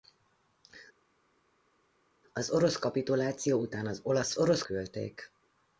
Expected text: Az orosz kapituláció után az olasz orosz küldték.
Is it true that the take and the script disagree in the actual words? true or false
false